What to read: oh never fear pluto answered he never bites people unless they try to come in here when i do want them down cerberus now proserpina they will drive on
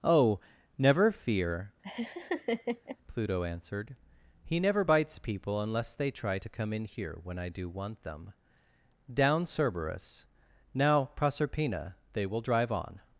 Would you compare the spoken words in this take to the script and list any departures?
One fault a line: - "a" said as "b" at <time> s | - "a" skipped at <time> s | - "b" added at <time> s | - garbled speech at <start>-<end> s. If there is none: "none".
none